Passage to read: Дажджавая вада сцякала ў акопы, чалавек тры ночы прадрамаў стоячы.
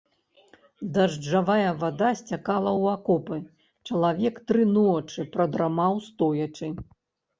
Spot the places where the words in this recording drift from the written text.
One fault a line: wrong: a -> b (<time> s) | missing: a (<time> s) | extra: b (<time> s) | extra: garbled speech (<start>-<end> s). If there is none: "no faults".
no faults